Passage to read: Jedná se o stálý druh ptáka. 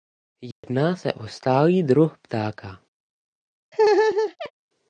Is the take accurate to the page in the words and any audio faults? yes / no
no